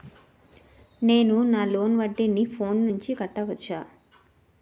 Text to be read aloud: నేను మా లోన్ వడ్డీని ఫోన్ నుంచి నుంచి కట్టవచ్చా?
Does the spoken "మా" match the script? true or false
false